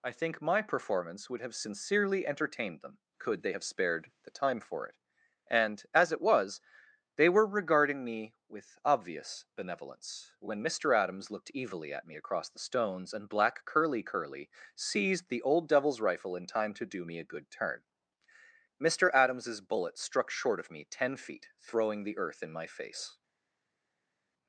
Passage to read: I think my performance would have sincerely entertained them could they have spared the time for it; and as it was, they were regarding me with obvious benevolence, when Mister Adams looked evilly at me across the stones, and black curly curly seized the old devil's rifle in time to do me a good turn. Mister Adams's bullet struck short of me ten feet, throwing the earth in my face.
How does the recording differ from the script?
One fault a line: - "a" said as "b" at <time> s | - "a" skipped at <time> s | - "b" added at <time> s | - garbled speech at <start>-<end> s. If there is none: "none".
none